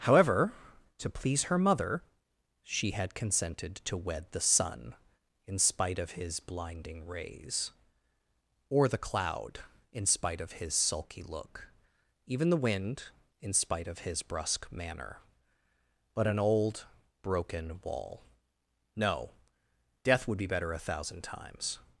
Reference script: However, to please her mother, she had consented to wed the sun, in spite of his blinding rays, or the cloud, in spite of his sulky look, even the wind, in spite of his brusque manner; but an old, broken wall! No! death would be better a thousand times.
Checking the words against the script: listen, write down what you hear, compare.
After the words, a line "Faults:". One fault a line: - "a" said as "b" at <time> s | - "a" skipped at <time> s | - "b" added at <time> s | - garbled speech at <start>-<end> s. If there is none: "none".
However, to please her mother, she had consented to wed the sun, in spite of his blinding rays, or the cloud, in spite of his sulky look, even the wind, in spite of his brusque manner; but an old, broken wall! No! death would be better a thousand times.
Faults:
none